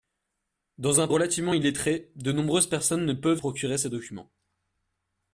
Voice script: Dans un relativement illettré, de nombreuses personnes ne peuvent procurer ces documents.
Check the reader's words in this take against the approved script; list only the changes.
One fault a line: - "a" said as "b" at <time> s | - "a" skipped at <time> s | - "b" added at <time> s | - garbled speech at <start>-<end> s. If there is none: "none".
none